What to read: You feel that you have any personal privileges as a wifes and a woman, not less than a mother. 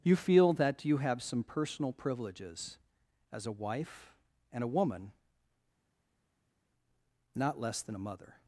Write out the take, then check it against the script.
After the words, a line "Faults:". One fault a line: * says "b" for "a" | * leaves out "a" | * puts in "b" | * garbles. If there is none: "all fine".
You feel that you have some personal privileges as a wife and a woman, not less than a mother.
Faults:
* says "some" for "any"
* says "wife" for "wifes"